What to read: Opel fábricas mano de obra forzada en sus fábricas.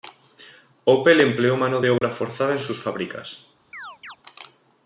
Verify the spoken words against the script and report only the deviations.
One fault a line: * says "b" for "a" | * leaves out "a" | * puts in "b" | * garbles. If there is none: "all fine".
* says "empleó" for "fábricas"